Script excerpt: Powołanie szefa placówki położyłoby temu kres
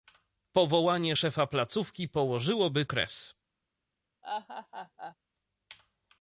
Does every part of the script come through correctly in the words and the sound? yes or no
no